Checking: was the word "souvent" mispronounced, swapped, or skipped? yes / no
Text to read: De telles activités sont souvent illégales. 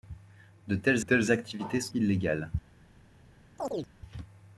yes